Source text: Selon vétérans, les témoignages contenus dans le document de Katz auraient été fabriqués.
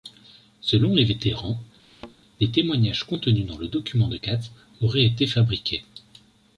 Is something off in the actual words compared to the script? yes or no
yes